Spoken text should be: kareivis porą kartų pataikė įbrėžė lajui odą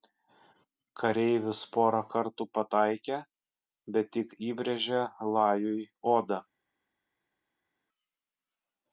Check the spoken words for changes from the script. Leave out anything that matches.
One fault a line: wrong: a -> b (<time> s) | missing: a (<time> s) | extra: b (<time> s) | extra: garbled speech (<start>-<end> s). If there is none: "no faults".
extra: bet tik (4.0 s)